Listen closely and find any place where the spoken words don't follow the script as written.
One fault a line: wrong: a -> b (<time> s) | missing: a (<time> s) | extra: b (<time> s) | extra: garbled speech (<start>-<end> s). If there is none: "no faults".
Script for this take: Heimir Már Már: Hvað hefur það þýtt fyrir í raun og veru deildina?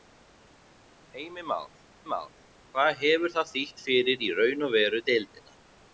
no faults